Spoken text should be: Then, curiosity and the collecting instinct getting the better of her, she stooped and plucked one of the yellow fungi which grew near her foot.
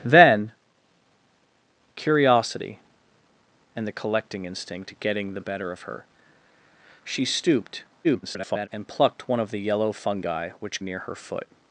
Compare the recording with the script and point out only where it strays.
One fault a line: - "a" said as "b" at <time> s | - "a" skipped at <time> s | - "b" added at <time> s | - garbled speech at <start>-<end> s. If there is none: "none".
- garbled speech at 8.0-8.7 s
- "grew" skipped at 10.8 s